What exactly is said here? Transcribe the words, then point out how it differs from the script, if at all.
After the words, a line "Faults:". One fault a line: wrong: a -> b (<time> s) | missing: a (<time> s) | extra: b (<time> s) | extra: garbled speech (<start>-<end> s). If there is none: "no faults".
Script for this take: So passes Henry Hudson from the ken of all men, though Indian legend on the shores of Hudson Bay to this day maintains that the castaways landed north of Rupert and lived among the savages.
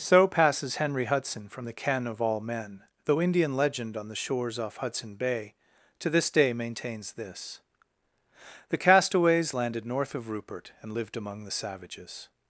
So passes Henry Hudson from the ken of all men, though Indian legend on the shores off Hudson Bay to this day maintains this the castaways landed north of Rupert and lived among the savages.
Faults:
wrong: of -> off (4.6 s)
wrong: that -> this (7.1 s)